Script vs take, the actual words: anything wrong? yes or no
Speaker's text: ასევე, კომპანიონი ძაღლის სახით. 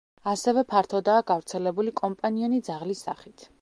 yes